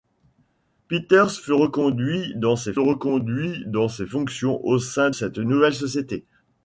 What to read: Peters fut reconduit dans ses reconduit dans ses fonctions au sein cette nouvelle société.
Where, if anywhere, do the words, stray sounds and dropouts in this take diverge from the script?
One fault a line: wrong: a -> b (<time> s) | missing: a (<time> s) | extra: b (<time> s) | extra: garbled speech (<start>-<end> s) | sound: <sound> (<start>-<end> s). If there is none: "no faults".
no faults